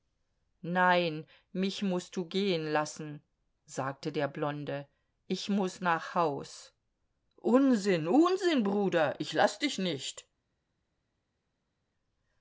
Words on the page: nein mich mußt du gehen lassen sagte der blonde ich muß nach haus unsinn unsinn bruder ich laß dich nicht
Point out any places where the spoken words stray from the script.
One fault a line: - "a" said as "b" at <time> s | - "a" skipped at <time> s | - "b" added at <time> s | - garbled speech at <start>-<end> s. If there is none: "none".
none